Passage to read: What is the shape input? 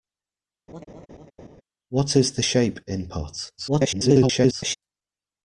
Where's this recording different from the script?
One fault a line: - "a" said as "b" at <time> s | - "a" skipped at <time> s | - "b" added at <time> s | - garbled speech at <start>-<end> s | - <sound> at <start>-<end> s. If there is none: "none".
- laugh at 0.7-1.6 s
- garbled speech at 3.6-4.8 s